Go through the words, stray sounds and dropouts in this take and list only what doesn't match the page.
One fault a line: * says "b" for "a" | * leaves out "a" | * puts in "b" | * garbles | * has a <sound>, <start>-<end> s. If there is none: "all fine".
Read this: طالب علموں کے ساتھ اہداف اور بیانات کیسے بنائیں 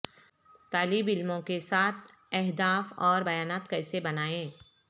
all fine